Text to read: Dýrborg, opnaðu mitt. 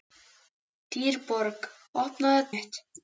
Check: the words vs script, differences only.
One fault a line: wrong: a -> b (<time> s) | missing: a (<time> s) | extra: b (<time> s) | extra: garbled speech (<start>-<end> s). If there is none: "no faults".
no faults